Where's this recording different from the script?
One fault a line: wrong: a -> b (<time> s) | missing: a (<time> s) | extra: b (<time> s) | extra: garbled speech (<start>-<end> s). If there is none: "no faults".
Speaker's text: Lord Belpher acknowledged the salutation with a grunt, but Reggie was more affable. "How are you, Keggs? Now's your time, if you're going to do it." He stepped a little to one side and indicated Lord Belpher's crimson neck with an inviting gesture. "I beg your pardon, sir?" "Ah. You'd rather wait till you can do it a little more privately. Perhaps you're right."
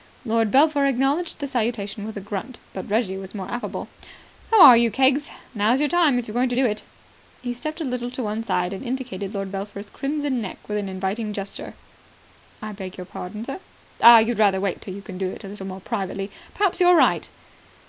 no faults